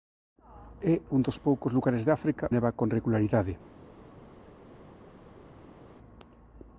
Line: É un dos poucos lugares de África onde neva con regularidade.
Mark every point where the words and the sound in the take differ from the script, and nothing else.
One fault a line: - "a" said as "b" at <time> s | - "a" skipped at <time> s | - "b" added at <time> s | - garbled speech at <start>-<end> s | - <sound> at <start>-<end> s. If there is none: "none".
- "onde" skipped at 2.5 s